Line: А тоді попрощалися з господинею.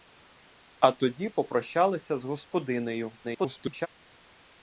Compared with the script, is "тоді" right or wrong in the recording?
right